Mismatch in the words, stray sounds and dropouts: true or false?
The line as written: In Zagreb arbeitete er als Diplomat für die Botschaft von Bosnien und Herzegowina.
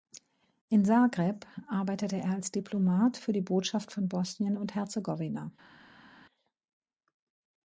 false